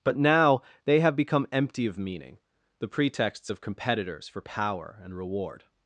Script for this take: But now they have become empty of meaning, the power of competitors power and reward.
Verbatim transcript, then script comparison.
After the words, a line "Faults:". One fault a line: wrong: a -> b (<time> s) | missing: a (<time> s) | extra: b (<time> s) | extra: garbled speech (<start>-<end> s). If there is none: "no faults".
But now they have become empty of meaning, the pretexts of competitors for power and reward.
Faults:
wrong: power -> pretexts (2.9 s)
extra: for (4.3 s)